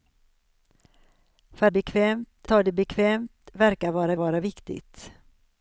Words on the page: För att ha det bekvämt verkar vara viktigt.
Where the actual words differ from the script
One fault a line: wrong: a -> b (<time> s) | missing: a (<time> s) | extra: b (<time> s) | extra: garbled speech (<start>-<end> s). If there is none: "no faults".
wrong: att -> bekvämt (1.7 s)
extra: vara (4.2 s)